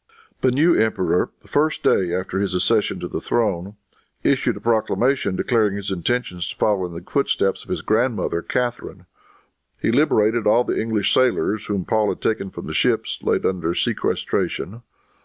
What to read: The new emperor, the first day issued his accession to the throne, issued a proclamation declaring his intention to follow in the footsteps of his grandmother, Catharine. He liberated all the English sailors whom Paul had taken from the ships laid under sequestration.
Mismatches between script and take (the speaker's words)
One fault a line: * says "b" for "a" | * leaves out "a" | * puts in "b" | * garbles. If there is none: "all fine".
* says "after" for "issued"